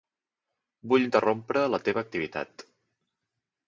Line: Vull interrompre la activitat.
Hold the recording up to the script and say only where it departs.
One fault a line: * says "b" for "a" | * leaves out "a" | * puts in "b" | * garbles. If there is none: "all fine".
* puts in "teva"